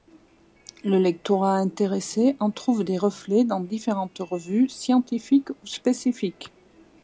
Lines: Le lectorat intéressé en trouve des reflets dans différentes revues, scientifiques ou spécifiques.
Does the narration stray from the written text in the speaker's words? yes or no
no